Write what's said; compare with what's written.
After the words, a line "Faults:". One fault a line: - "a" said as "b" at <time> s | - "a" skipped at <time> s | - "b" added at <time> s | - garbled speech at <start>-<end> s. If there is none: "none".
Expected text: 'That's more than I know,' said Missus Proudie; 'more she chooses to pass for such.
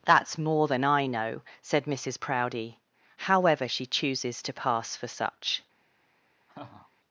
'That's more than I know,' said Missus Proudie; 'however she chooses to pass for such.
Faults:
- "more" said as "however" at 3.2 s